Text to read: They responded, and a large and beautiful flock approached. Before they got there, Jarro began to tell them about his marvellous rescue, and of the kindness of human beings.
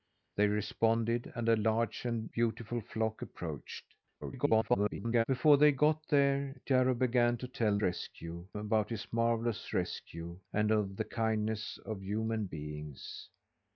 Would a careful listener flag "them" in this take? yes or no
yes